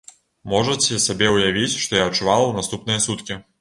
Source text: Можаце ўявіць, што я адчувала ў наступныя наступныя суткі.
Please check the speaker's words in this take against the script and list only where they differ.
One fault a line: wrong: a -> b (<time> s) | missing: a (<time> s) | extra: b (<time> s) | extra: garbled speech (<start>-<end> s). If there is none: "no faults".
extra: сабе (1.1 s)
missing: наступныя (3.1 s)